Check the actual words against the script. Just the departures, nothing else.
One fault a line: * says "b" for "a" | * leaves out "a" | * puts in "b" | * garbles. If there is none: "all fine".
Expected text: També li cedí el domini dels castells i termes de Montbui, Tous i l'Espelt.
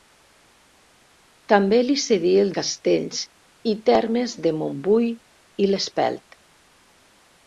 * leaves out "domini dels"
* leaves out "Tous"